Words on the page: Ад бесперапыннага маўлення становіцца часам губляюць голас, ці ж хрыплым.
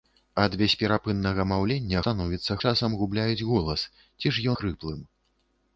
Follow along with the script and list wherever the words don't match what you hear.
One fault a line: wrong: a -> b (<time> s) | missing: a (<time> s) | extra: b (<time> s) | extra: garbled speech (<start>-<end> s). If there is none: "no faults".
no faults